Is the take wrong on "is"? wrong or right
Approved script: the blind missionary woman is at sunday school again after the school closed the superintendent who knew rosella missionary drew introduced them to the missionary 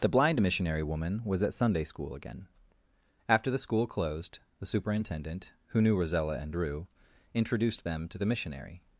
wrong